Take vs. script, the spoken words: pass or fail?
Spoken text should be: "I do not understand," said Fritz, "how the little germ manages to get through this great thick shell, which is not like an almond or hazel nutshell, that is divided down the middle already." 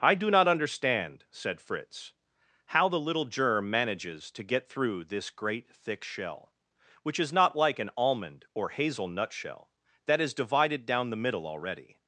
pass